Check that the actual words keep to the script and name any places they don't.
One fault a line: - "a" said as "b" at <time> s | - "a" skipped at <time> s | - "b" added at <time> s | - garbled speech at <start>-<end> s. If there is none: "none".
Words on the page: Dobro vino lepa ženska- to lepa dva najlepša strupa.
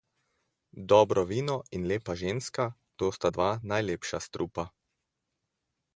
- "in" added at 1.7 s
- "lepa" said as "sta" at 3.1 s